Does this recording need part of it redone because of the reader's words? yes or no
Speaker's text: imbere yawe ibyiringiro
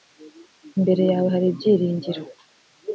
yes